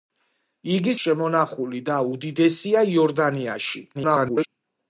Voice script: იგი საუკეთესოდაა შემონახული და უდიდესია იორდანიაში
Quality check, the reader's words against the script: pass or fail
fail